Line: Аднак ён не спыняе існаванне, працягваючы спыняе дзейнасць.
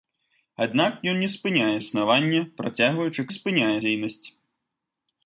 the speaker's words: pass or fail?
pass